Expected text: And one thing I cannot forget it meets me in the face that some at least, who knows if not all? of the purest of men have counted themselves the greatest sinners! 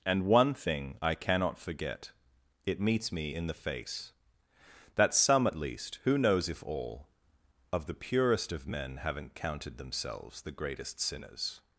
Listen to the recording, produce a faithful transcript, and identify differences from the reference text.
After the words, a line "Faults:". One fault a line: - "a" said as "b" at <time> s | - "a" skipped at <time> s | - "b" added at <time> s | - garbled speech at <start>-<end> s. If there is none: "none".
And one thing I cannot forget it meets me in the face that some at least, who knows if all? of the purest of men haven't counted themselves the greatest sinners!
Faults:
- "not" skipped at 6.6 s
- "have" said as "haven't" at 9.0 s